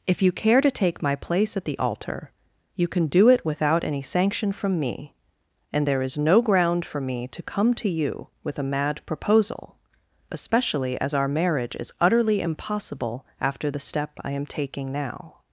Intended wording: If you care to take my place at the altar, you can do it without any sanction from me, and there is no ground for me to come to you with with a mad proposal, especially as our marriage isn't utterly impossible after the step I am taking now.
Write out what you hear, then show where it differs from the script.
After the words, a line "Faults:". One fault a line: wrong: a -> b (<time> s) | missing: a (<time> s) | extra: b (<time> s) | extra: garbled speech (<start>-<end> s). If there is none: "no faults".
If you care to take my place at the altar, you can do it without any sanction from me, and there is no ground for me to come to you with a mad proposal, especially as our marriage is utterly impossible after the step I am taking now.
Faults:
missing: with (8.6 s)
wrong: isn't -> is (11.7 s)